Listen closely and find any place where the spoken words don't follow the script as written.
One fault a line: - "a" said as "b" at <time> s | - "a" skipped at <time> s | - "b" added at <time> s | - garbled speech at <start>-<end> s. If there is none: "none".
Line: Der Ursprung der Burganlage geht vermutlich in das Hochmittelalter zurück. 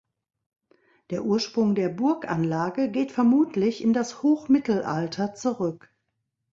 none